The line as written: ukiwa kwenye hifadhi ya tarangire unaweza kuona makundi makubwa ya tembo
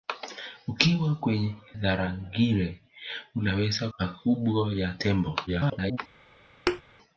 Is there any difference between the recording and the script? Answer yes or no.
yes